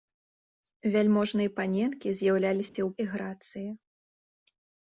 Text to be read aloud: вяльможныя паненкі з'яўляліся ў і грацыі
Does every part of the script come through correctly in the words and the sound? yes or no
no